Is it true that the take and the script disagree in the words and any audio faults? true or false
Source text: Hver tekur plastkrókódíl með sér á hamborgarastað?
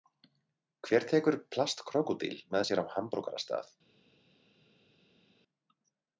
false